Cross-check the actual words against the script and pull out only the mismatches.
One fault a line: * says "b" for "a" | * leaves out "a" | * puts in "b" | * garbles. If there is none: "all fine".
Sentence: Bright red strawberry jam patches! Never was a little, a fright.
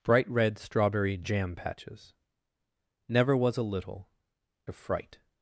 all fine